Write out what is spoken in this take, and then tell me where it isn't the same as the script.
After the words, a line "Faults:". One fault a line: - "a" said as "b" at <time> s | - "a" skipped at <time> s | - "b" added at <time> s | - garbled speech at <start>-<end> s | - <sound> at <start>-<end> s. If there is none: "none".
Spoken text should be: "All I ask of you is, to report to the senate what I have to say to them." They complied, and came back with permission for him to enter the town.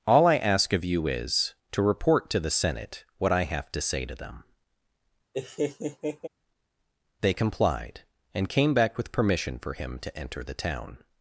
"All I ask of you is, to report to the senate what I have to say to them." They complied, and came back with permission for him to enter the town.
Faults:
- laugh at 5.3-6.3 s